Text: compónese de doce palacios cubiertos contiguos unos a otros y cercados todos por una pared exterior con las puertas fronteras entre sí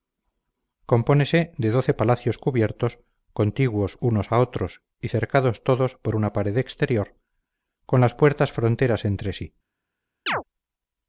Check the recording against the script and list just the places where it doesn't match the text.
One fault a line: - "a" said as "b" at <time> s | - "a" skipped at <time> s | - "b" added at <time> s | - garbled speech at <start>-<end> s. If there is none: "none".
none